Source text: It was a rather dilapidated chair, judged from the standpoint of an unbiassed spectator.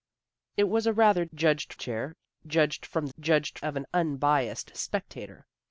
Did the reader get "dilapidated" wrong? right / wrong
wrong